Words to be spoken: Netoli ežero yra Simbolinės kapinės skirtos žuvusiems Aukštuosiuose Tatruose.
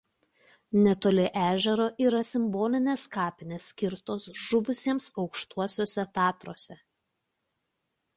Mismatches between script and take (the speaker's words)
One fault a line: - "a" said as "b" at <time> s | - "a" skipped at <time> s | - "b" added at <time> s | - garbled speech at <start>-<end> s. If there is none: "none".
none